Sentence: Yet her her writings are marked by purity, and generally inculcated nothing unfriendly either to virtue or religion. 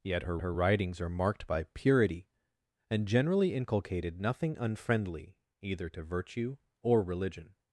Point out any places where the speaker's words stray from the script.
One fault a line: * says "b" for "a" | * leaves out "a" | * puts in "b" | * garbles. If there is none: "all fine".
all fine